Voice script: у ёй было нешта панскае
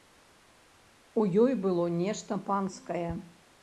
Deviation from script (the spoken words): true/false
false